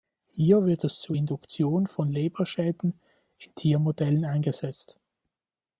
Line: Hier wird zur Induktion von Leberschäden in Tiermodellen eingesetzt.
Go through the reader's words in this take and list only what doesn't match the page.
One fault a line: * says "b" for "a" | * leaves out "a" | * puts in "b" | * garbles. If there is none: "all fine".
* puts in "es"